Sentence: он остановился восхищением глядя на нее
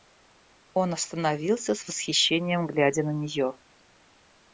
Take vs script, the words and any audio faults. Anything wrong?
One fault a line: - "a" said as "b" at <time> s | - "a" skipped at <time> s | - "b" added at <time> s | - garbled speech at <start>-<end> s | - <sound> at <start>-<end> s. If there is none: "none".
- "с" added at 1.8 s